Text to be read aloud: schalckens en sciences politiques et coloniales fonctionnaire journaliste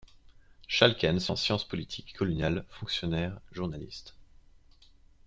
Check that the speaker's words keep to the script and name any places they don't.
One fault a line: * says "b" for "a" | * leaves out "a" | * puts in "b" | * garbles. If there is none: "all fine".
all fine